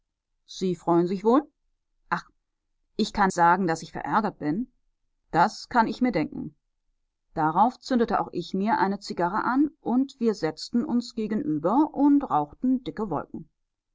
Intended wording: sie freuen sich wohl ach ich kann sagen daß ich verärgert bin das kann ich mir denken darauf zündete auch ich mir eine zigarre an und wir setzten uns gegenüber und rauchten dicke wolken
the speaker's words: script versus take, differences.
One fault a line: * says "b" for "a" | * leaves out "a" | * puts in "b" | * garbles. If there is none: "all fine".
all fine